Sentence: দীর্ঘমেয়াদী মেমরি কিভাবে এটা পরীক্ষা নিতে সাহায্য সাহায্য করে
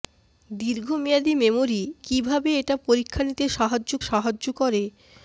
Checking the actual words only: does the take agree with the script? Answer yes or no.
yes